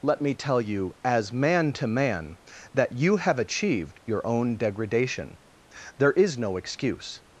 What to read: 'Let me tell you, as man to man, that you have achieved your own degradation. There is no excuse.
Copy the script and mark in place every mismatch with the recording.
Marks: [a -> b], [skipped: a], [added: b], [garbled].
'Let me tell you, as man to man, that you have achieved your own degradation. There is no excuse.